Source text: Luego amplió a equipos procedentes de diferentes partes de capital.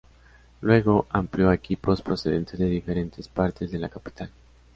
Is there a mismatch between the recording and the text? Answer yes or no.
yes